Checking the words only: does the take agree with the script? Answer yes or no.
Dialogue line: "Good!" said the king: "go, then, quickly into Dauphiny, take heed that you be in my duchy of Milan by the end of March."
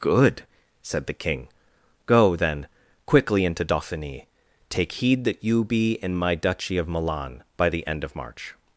yes